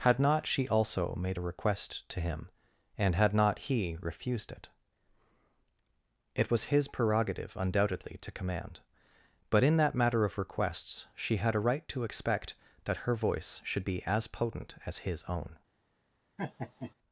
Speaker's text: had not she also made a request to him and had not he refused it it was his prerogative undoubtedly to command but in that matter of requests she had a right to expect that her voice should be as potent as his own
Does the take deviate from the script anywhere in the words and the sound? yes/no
yes